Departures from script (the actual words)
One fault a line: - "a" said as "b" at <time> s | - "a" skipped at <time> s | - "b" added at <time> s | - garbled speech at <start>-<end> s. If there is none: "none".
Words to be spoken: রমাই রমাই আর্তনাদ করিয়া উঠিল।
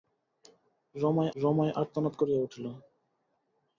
none